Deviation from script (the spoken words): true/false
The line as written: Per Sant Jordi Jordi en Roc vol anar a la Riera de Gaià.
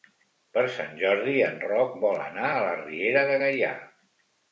true